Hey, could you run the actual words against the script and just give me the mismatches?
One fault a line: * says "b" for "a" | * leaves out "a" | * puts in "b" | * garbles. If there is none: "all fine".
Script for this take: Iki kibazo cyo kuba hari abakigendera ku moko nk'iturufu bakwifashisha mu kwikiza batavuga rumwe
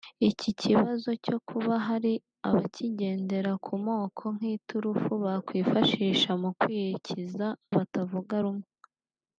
all fine